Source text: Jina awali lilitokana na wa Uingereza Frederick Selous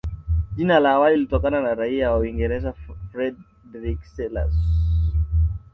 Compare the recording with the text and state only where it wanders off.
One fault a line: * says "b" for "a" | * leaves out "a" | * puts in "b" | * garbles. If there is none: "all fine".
* puts in "la"
* puts in "raia"